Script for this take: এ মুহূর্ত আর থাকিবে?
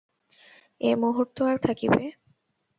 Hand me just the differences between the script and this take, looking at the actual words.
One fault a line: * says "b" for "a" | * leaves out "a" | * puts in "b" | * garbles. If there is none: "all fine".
all fine